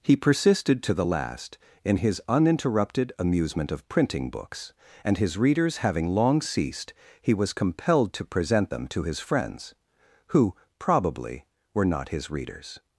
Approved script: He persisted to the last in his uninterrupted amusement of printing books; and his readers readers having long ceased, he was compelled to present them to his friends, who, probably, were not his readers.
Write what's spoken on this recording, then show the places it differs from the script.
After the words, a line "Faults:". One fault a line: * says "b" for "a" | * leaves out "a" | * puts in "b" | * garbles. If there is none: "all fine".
He persisted to the last in his uninterrupted amusement of printing books; and his readers having long ceased, he was compelled to present them to his friends, who, probably, were not his readers.
Faults:
* leaves out "readers"